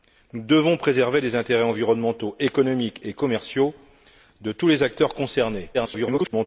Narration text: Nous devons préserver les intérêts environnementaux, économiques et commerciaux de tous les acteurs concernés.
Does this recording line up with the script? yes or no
no